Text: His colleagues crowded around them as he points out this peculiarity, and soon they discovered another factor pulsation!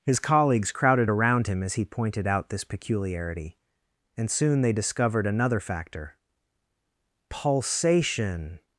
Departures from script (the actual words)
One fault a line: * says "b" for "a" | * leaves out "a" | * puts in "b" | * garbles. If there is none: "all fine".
* says "him" for "them"
* says "pointed" for "points"